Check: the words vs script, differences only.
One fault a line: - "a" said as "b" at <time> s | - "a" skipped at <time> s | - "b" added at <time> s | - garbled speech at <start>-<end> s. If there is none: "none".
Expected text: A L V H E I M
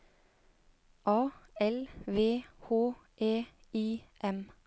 none